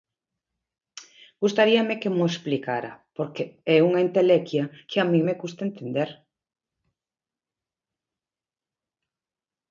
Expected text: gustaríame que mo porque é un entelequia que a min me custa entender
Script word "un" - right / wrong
wrong